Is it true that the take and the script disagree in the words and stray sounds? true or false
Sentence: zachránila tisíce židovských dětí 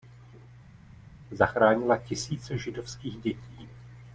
false